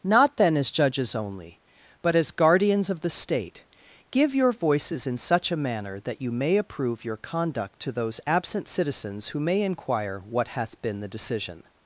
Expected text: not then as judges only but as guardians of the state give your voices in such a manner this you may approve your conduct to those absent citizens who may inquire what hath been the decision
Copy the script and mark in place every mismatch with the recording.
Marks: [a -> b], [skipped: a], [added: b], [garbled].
not then as judges only but as guardians of the state give your voices in such a manner [this -> that] you may approve your conduct to those absent citizens who may inquire what hath been the decision